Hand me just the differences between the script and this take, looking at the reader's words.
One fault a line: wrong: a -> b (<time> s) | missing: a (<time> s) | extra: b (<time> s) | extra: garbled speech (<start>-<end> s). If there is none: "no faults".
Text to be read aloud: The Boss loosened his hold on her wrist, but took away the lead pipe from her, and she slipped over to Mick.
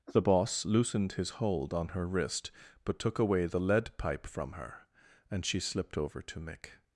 no faults